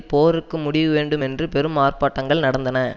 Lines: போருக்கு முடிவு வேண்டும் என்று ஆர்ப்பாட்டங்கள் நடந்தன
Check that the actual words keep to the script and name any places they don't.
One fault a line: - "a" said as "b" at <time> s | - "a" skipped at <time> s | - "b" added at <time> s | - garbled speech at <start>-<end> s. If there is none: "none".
- "பெரும்" added at 1.5 s